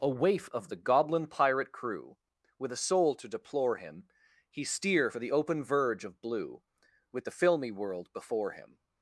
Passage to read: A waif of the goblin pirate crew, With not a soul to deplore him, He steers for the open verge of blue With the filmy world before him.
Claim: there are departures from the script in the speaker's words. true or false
true